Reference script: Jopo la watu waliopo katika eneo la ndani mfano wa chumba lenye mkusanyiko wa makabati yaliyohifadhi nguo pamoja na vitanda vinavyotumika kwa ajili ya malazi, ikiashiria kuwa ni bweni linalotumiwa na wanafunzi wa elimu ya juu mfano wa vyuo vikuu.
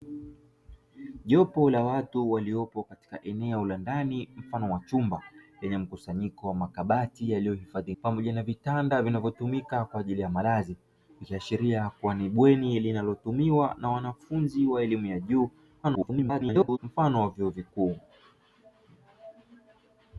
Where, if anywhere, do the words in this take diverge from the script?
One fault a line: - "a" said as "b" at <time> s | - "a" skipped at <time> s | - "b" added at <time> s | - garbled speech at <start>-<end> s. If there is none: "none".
- "nguo" skipped at 8.0 s
- garbled speech at 15.8-16.8 s